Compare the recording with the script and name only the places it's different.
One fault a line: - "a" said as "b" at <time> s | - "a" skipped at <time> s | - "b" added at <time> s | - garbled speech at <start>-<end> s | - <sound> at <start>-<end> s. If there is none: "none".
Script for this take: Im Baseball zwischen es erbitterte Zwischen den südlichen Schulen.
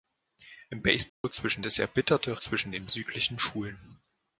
- dropout at 1.1-1.2 s